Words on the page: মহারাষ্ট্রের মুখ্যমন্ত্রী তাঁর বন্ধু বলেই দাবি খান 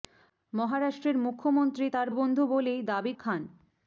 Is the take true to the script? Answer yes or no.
yes